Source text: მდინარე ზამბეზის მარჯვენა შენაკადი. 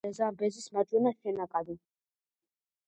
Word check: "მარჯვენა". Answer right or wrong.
right